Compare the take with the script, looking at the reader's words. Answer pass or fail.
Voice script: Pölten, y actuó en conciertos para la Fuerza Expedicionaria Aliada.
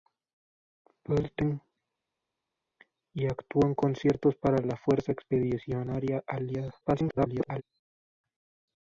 fail